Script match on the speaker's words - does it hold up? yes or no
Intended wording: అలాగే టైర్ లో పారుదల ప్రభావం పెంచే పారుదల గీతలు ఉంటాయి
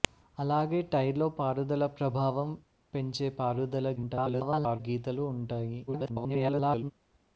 no